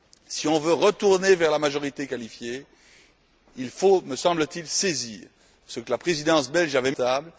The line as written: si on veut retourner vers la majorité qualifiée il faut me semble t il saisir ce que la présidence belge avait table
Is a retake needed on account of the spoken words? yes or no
no